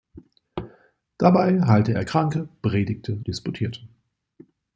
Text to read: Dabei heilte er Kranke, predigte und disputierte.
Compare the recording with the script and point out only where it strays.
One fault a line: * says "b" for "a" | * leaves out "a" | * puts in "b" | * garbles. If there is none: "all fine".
* leaves out "und"